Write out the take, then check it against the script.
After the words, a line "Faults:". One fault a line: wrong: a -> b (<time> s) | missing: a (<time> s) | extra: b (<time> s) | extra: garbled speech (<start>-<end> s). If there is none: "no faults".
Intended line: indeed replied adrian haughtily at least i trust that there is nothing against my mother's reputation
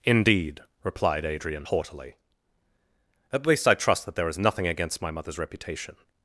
indeed replied adrian haughtily at least i trust that there is nothing against my mother's reputation
Faults:
no faults